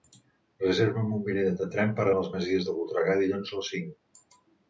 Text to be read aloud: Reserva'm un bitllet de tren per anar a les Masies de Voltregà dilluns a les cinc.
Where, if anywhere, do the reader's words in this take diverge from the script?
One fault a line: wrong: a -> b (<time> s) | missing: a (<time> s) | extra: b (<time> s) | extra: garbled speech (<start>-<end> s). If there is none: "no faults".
missing: anar (2.1 s)